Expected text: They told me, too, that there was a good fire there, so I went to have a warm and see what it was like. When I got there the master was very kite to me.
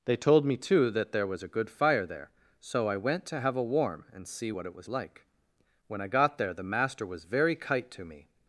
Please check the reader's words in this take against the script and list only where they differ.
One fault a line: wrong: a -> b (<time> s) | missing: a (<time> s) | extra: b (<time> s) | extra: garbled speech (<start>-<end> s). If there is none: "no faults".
no faults